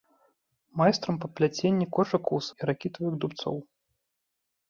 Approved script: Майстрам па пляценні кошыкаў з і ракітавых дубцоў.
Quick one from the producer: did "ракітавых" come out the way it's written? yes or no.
yes